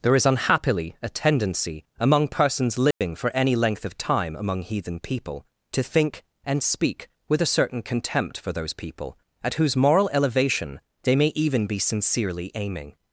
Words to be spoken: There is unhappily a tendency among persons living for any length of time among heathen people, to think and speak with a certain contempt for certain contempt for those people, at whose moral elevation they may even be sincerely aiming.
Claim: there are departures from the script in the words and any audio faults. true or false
true